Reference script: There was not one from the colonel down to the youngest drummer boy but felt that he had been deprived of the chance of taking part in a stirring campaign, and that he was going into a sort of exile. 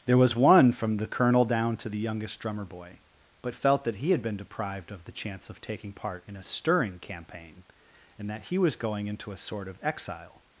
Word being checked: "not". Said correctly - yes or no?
no